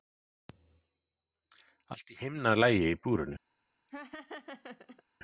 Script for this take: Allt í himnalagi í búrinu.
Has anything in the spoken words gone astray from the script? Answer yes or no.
no